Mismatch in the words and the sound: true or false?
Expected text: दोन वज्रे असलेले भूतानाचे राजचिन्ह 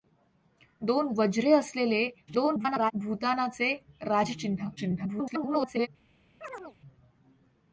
true